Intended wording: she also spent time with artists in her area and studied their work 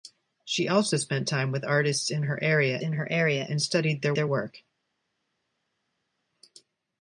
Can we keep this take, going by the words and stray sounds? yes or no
no